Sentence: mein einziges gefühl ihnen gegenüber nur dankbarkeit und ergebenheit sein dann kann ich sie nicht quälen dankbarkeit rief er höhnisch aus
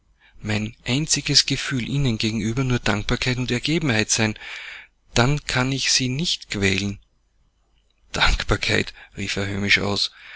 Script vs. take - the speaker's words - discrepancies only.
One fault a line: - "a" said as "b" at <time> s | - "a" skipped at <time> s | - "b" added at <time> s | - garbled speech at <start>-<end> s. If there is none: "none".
none